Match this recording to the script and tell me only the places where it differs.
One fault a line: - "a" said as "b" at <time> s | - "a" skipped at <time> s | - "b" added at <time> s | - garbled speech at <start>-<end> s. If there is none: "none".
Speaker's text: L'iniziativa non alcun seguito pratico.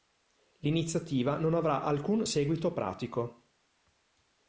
- "avrà" added at 1.5 s